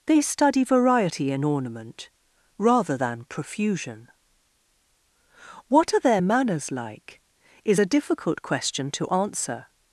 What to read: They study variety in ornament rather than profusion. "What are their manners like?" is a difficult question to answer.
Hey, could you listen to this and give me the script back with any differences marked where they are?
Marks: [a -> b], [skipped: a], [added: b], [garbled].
They study variety in ornament rather than profusion. "What are their manners like?" is a difficult question to answer.